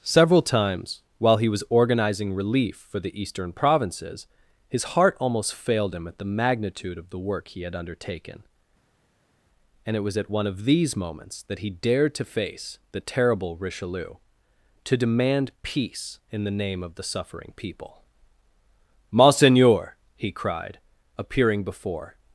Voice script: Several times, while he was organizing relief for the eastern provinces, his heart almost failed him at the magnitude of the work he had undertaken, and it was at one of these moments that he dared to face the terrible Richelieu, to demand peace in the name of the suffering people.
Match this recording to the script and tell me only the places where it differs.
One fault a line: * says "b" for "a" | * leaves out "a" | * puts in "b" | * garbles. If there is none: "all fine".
* puts in "Monseigneur he cried appearing before"